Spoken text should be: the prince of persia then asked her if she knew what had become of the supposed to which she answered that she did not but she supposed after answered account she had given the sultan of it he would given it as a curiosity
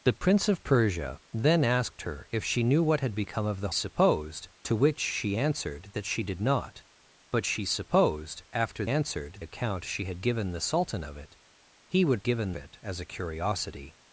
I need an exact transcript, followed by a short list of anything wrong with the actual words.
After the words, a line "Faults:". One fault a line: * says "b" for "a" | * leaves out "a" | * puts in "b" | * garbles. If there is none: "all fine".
the prince of persia then asked her if she knew what had become of the supposed to which she answered that she did not but she supposed after answered account she had given the sultan of it he would given it as a curiosity
Faults:
all fine